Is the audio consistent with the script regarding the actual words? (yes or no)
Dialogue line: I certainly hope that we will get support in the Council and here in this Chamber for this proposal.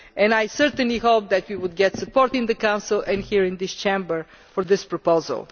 yes